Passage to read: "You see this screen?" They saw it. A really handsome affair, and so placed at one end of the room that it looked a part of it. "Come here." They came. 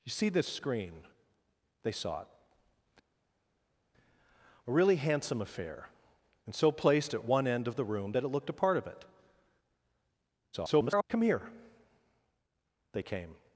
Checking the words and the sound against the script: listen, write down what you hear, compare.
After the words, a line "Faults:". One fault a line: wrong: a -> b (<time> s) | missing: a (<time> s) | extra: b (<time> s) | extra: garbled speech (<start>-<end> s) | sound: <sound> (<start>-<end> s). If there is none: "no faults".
"You see this screen?" They saw it. A really handsome affair, and so placed at one end of the room that it looked a part of it. [garbled] "Come here." They came.
Faults:
extra: garbled speech (10.5-11.0 s)